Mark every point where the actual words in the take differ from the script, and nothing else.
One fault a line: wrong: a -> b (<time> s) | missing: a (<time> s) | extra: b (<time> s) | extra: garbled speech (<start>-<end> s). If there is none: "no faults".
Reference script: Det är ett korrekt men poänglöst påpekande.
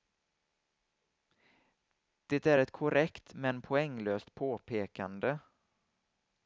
no faults